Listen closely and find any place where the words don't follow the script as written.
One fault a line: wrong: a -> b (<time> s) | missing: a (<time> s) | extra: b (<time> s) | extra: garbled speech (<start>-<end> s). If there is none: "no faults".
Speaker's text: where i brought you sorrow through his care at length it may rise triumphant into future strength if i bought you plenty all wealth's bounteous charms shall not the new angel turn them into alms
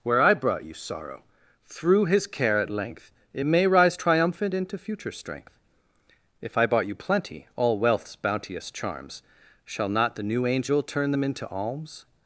no faults